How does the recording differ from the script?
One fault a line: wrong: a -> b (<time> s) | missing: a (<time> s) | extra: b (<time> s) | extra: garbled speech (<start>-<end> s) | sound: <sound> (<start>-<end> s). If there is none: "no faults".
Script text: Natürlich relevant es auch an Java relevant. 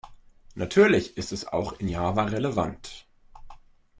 wrong: relevant -> ist (1.1 s)
wrong: an -> in (1.7 s)